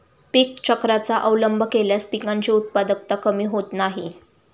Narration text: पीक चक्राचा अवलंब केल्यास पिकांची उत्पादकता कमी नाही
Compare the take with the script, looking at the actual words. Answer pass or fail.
fail